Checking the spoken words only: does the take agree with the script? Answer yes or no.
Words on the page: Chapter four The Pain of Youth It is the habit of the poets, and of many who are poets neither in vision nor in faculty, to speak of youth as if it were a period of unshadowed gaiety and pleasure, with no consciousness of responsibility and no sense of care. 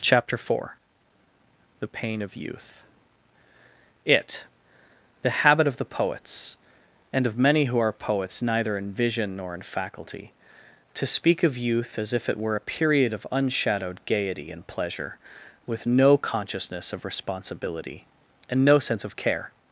no